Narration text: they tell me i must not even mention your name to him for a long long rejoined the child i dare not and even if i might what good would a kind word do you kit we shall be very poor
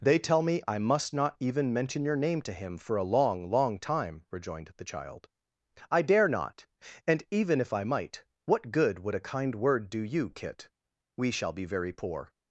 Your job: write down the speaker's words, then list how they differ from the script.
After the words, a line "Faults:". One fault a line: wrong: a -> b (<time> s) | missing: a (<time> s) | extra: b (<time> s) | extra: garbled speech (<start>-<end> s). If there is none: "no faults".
they tell me i must not even mention your name to him for a long long time rejoined the child i dare not and even if i might what good would a kind word do you kit we shall be very poor
Faults:
extra: time (3.8 s)